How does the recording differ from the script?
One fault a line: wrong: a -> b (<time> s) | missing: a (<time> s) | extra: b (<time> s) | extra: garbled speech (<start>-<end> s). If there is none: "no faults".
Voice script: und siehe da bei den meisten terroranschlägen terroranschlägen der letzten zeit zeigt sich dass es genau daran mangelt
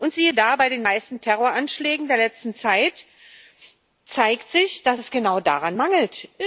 missing: terroranschlägen (2.1 s)